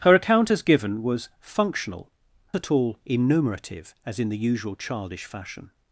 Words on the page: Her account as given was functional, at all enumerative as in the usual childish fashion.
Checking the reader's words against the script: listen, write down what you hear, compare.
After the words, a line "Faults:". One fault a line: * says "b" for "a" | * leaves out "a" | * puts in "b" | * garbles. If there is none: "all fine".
Her account as given was functional, at all enumerative as in the usual childish fashion.
Faults:
all fine